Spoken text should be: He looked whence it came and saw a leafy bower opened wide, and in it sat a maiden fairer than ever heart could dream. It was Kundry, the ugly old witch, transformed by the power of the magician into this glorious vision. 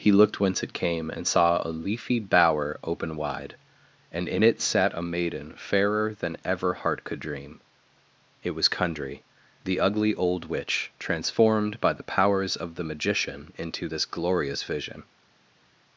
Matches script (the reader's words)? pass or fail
fail